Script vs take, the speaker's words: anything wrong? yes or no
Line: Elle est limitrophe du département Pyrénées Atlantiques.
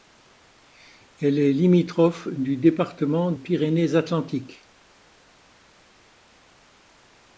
no